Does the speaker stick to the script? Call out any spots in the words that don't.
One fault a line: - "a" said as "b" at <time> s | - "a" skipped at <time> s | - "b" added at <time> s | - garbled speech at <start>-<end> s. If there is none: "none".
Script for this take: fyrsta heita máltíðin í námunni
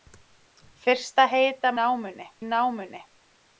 - "máltíðin" said as "námunni" at 1.8 s